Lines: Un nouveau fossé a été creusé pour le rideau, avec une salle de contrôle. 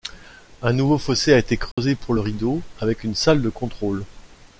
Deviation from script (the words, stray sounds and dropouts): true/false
true